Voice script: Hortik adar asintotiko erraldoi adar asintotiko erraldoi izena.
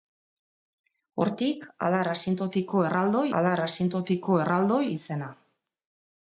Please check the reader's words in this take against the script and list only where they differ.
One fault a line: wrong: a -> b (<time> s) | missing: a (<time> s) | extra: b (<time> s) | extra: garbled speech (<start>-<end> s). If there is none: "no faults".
no faults